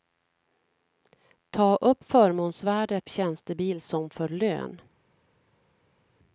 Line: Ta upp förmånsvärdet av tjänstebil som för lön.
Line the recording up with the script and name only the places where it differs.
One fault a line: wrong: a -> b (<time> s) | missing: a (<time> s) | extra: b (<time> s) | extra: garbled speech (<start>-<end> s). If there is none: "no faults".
missing: av (3.1 s)